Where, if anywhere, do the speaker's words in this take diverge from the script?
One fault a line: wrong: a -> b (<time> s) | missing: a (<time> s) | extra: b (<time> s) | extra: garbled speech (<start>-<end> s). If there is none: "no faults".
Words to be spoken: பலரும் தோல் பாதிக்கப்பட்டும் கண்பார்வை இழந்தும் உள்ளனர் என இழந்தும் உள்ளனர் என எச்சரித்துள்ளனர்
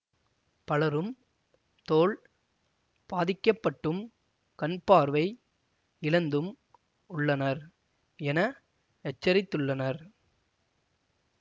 missing: இழந்தும் உள்ளனர் என (8.4 s)